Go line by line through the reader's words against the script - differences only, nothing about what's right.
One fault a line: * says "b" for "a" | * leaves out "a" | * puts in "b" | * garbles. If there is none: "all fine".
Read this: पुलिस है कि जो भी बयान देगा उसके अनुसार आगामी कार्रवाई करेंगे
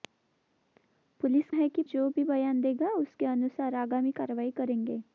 all fine